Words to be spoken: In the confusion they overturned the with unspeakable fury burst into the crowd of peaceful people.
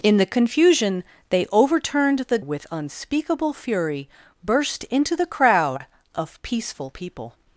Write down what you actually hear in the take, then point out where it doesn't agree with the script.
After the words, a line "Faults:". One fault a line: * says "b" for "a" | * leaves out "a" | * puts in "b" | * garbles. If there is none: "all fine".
In the confusion they overturned the with unspeakable fury burst into the crowd of peaceful people.
Faults:
all fine